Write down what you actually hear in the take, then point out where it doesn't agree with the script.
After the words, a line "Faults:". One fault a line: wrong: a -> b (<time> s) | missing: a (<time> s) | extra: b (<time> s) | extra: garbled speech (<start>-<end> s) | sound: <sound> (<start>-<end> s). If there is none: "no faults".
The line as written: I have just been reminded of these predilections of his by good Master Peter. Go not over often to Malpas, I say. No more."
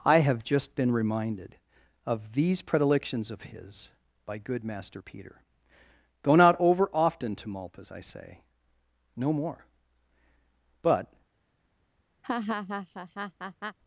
I have just been reminded of these predilections of his by good Master Peter. Go not over often to Malpas, I say. No more." But
Faults:
extra: But (10.8 s)
sound: laugh (12.2-13.8 s)